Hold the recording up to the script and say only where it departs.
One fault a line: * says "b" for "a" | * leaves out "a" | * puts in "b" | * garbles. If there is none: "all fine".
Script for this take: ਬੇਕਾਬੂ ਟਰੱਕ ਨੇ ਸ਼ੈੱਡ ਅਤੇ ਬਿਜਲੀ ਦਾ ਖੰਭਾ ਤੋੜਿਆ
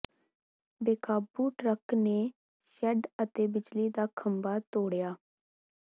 all fine